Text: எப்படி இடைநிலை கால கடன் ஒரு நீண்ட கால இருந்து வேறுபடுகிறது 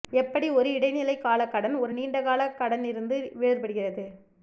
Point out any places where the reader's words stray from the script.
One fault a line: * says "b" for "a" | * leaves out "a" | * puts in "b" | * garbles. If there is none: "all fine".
* puts in "ஒரு"
* puts in "கடன்"